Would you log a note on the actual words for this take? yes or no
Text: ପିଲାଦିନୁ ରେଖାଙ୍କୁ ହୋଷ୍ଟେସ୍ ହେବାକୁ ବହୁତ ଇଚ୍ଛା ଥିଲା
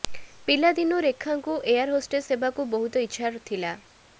yes